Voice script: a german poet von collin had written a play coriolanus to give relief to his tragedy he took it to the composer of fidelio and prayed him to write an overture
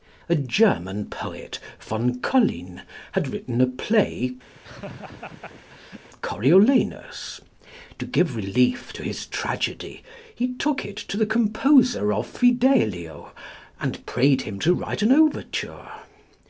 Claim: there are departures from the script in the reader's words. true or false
false